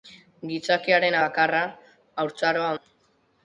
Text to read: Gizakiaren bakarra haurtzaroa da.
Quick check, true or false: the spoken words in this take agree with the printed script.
true